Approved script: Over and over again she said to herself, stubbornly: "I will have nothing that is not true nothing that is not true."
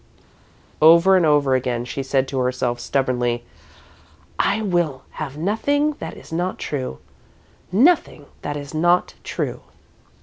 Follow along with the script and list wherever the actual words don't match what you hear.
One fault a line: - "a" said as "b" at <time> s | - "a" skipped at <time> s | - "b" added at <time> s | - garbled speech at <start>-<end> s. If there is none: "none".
none